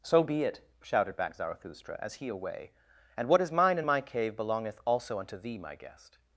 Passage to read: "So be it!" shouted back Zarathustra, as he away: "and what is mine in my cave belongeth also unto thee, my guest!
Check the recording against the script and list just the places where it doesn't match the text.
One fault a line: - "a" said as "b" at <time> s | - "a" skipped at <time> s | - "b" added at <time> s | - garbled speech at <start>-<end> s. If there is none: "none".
none